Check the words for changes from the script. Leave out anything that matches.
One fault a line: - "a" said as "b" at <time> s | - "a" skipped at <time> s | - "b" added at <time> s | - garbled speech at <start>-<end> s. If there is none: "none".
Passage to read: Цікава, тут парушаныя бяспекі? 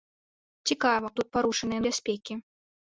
none